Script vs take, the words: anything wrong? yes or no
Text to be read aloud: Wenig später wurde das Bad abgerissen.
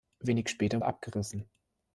yes